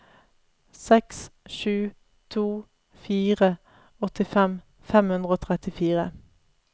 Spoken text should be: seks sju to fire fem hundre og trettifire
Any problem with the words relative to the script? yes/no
yes